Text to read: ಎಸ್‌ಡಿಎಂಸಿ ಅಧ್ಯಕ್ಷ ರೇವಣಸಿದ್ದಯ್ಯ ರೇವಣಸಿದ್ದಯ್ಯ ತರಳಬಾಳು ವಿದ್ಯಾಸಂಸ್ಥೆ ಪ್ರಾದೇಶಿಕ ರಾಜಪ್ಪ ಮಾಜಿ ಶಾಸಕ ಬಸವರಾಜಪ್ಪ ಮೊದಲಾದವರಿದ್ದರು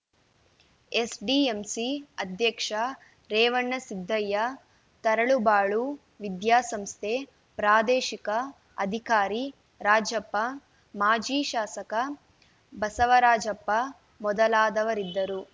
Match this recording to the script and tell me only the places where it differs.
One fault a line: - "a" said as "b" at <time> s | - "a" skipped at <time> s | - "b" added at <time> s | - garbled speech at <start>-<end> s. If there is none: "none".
- "ರೇವಣಸಿದ್ದಯ್ಯ" skipped at 4.4 s
- "ಅಧಿಕಾರಿ" added at 8.8 s